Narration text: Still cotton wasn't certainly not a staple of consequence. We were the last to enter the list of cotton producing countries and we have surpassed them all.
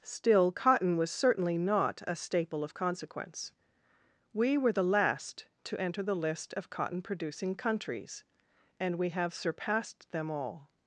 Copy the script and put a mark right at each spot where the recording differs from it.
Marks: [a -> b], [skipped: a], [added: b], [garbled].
Still cotton [wasn't -> was] certainly not a staple of consequence. We were the last to enter the list of cotton producing countries and we have surpassed them all.